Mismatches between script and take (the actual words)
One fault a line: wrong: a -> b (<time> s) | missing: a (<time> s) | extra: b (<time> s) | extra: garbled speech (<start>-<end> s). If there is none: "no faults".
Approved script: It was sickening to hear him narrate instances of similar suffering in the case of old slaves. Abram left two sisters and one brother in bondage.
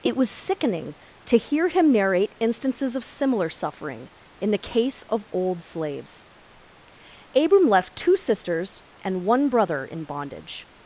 no faults